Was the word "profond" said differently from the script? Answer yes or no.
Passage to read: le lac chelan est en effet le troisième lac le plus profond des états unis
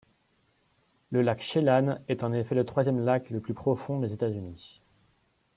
no